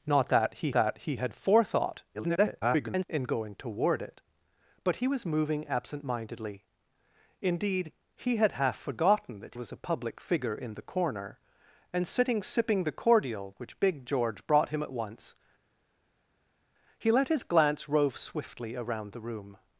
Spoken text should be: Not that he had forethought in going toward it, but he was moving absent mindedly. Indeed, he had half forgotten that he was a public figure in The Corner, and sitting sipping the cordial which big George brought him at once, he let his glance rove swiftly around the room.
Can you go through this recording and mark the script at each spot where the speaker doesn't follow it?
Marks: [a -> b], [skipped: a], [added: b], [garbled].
Not that he [added: that he] had forethought [garbled] in going toward it, but he was moving absent mindedly. Indeed, he had half forgotten that [skipped: he] was a public figure in The Corner, and sitting sipping the cordial which big George brought him at once, he let his glance rove swiftly around the room.